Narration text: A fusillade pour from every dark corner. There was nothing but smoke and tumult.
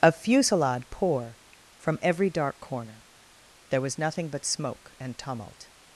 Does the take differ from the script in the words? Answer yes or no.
no